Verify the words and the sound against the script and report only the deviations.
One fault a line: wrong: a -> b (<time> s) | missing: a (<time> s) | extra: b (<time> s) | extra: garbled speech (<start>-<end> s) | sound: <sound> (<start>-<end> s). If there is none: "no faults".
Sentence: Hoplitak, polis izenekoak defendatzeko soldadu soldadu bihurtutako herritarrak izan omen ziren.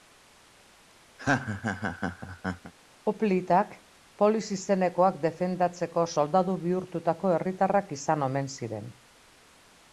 sound: laugh (1.2-2.7 s)
missing: soldadu (6.6 s)